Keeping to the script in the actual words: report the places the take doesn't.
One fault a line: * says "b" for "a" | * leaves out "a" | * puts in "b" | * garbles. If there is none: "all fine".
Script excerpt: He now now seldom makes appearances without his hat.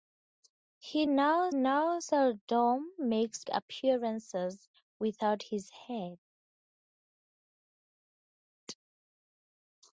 all fine